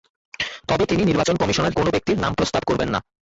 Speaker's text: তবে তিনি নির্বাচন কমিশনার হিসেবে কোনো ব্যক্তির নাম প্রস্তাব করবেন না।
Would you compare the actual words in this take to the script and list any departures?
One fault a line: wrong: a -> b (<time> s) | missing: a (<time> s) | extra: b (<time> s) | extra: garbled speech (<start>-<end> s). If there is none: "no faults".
missing: হিসেবে (1.8 s)